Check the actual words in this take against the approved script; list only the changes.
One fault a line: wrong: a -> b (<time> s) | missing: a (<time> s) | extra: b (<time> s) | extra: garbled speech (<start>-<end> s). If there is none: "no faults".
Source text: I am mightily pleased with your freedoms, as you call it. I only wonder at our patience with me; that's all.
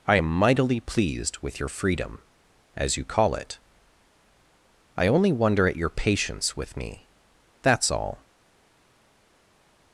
wrong: freedoms -> freedom (1.7 s)
wrong: our -> your (5.7 s)